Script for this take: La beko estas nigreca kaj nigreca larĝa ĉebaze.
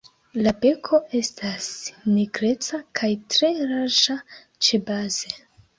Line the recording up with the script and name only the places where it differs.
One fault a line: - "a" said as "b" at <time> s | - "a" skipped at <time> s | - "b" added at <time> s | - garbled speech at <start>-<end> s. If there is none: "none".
- "nigreca" said as "tre" at 3.4 s